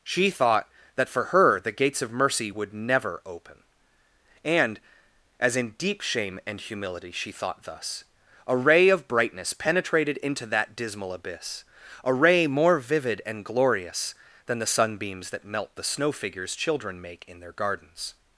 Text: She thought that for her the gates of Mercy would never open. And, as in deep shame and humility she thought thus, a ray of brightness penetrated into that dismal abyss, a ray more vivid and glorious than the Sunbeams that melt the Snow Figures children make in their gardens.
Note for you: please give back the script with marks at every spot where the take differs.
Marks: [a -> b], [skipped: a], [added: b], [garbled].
She thought that for her the gates of Mercy would never open. And, as in deep shame and humility she thought thus, a ray of brightness penetrated into that dismal abyss, a ray more vivid and glorious than the Sunbeams that melt the Snow Figures children make in their gardens.